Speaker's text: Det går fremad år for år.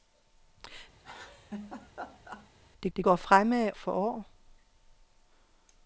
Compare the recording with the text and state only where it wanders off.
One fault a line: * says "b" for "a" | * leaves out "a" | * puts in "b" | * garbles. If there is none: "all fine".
* puts in "det"
* leaves out "år"